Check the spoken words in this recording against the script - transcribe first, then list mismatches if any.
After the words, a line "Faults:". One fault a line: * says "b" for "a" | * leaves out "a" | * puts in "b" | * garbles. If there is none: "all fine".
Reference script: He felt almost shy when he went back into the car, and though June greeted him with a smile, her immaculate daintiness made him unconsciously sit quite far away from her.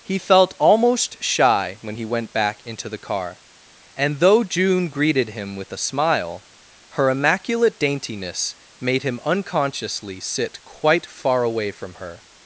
He felt almost shy when he went back into the car, and though June greeted him with a smile, her immaculate daintiness made him unconsciously sit quite far away from her.
Faults:
all fine